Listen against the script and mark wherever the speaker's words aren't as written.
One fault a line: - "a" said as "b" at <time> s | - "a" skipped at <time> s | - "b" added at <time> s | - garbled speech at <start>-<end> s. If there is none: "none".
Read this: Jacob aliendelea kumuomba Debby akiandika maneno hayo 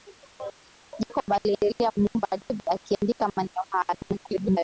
- garbled speech at 3.9-4.6 s